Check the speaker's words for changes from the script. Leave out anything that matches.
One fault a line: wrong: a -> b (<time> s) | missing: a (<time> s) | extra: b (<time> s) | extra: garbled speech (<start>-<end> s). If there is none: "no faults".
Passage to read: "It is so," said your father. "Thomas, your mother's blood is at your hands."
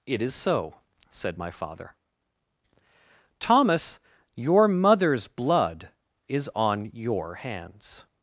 wrong: your -> my (1.4 s)
wrong: at -> on (6.5 s)